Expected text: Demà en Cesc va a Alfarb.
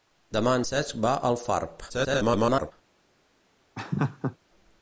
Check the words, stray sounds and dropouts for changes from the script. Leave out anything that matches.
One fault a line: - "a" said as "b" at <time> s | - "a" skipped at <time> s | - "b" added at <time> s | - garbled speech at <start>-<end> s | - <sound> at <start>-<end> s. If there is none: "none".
- garbled speech at 1.9-2.7 s
- laugh at 3.8-4.4 s